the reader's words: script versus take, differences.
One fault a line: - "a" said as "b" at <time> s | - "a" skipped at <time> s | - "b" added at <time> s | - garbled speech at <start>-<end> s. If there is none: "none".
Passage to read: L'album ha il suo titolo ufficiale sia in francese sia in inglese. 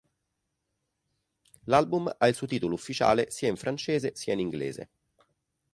none